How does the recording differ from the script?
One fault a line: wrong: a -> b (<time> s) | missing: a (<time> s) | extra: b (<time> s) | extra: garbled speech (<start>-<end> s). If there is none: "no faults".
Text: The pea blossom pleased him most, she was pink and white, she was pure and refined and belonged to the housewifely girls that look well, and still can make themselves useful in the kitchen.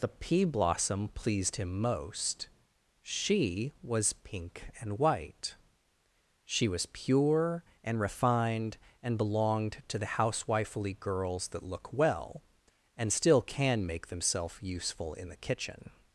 no faults